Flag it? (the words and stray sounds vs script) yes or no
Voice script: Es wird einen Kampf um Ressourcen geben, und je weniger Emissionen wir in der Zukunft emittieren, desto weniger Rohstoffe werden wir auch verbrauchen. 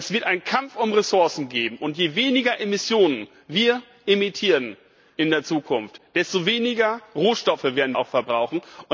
yes